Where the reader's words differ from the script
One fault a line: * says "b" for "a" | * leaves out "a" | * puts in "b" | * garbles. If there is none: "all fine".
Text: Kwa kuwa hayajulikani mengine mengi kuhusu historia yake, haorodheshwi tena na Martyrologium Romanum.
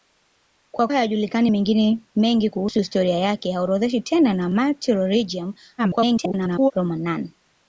* leaves out "kuwa"
* garbles